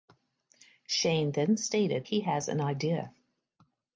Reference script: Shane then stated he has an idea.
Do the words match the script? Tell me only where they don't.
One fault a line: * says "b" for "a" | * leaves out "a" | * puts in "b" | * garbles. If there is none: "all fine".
all fine